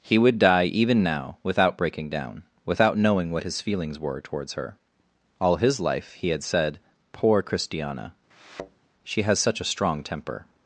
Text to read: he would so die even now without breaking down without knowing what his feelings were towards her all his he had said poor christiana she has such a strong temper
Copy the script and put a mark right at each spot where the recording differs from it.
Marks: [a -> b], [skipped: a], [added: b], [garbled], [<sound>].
he would [skipped: so] die even now without breaking down without knowing what his feelings were towards her all his [added: life] he had said poor christiana [thud] she has such a strong temper